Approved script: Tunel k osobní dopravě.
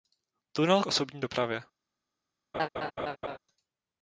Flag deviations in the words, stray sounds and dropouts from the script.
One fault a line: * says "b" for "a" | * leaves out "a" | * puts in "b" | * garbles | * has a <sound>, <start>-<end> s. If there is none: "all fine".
* has a laugh, 2.5-3.4 s